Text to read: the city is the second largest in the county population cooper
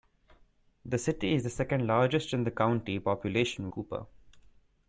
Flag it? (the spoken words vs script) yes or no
no